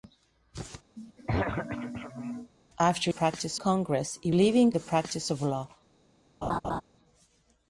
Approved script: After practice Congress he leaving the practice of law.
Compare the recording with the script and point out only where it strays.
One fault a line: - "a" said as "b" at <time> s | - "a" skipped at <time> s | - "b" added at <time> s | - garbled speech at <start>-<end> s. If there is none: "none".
none